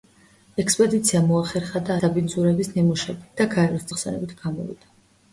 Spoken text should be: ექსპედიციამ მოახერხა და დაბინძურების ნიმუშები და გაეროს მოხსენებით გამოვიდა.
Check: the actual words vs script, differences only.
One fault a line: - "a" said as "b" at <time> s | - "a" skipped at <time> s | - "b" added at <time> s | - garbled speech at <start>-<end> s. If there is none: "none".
none